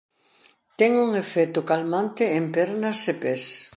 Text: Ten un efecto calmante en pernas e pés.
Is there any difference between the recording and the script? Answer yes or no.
no